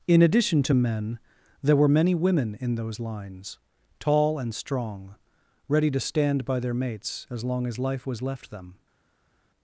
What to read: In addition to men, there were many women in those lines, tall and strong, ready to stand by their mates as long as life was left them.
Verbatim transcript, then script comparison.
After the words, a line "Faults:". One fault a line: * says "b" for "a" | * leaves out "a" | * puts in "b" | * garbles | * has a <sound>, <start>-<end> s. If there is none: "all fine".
In addition to men, there were many women in those lines, tall and strong, ready to stand by their mates as long as life was left them.
Faults:
all fine